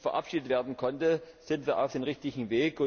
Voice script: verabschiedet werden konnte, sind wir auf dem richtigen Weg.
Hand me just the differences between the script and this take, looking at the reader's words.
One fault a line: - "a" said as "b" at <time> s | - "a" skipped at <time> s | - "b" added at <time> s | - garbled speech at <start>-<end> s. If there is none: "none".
none